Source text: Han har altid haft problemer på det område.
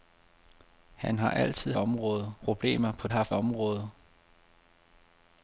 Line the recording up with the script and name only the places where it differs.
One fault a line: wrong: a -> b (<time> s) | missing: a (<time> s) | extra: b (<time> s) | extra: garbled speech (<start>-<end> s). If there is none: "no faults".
wrong: haft -> område (1.7 s)
wrong: det -> haft (3.1 s)